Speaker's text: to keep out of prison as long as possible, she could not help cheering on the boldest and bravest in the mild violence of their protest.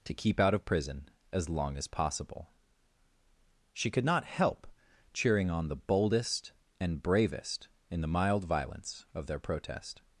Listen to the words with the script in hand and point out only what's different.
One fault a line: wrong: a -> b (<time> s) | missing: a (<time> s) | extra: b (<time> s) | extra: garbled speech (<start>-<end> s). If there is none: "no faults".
no faults